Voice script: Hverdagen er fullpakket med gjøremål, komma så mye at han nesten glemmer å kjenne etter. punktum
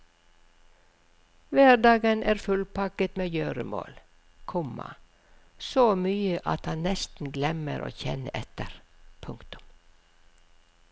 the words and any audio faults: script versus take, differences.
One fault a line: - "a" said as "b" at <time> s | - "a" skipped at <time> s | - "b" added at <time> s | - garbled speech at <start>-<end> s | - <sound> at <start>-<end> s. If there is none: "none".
none